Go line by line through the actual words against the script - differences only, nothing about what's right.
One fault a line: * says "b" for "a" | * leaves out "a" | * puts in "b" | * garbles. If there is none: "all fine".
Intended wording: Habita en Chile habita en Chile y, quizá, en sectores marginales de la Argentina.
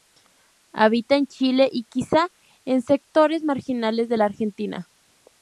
* leaves out "habita en Chile"